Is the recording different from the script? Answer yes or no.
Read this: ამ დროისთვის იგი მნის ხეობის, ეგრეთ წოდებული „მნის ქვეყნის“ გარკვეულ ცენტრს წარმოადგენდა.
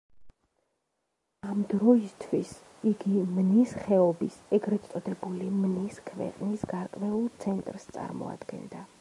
no